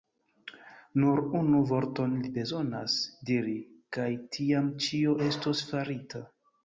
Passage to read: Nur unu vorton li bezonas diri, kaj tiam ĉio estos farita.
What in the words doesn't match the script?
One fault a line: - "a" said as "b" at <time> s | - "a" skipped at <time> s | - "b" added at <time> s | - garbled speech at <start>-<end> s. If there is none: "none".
none